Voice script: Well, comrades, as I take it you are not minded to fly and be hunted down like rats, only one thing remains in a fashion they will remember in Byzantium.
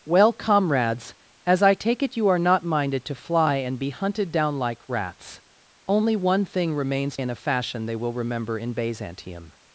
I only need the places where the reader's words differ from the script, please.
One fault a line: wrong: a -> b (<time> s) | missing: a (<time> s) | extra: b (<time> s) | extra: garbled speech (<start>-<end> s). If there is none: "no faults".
no faults